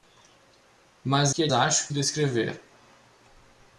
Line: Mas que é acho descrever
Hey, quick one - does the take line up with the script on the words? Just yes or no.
yes